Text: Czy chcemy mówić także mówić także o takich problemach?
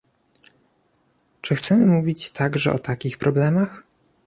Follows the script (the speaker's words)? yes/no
no